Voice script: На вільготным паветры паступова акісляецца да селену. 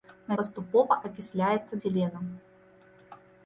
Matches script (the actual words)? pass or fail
fail